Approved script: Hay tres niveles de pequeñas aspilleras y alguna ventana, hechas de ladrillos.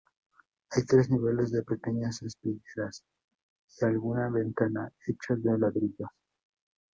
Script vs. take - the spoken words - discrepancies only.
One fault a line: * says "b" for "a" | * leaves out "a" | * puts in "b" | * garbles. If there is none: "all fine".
all fine